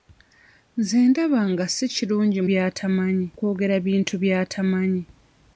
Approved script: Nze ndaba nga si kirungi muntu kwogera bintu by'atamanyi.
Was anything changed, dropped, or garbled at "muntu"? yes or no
yes